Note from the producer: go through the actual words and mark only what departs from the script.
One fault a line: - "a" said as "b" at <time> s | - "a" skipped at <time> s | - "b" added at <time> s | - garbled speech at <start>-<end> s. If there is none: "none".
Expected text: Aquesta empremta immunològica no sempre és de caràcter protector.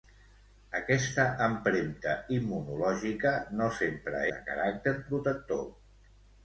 - "és" skipped at 4.2 s